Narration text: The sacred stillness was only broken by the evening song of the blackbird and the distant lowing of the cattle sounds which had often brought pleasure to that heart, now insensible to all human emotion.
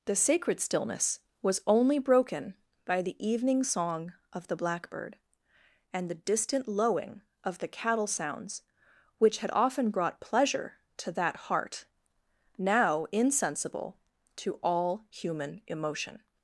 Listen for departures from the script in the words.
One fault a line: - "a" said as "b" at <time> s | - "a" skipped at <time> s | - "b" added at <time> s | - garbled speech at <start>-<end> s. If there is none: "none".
none